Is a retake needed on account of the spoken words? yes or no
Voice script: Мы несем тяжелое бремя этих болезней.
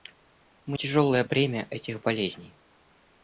yes